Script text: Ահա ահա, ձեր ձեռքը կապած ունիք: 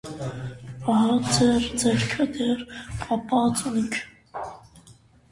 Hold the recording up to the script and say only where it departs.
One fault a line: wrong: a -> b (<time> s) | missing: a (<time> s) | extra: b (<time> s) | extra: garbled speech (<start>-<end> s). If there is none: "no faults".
missing: ահա (1.2 s)
extra: դեռ (2.4 s)